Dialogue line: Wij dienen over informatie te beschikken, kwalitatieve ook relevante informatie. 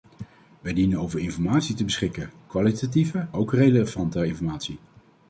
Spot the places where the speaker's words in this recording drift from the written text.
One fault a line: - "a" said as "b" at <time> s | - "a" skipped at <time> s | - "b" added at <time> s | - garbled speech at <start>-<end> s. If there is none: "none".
none